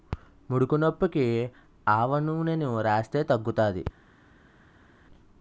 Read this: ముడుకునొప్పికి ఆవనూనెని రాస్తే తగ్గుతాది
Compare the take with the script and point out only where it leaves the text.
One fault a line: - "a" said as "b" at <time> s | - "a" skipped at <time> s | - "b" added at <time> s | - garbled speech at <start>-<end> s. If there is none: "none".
none